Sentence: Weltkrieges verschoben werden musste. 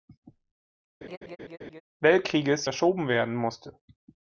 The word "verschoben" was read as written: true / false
true